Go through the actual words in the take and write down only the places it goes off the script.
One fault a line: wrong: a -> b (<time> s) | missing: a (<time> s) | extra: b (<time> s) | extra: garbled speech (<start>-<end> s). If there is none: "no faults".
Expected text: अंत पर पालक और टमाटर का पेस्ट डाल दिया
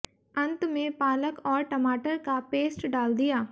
wrong: पर -> में (0.7 s)